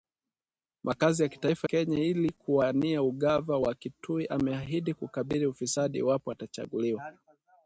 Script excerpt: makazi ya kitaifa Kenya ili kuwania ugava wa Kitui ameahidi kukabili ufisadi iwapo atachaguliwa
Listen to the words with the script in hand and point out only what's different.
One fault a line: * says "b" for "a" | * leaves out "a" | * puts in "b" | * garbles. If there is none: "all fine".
all fine